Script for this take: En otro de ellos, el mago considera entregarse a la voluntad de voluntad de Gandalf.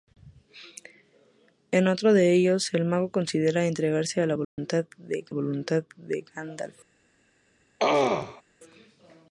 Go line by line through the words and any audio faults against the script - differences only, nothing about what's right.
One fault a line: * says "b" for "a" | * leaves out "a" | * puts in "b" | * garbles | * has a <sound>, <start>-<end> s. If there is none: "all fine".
* has a dropout, 4.4-4.6 s
* has a throat clearing, 7.8-8.4 s